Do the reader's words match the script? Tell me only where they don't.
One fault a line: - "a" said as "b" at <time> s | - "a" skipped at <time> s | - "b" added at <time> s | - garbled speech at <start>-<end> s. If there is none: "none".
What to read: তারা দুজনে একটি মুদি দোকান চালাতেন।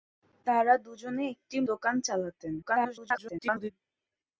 - "মুদি" skipped at 1.6 s
- garbled speech at 2.6-3.7 s